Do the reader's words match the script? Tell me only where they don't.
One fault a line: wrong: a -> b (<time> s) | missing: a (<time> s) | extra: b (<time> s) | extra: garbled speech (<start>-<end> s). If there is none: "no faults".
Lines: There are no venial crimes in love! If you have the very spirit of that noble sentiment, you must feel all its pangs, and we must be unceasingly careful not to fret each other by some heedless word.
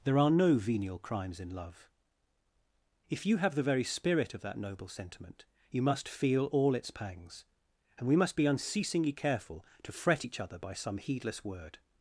missing: not (9.7 s)